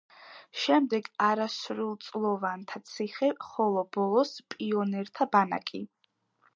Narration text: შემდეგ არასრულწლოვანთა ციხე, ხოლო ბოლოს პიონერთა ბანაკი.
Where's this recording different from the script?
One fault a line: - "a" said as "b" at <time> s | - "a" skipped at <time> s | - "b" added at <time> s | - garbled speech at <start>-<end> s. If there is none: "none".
none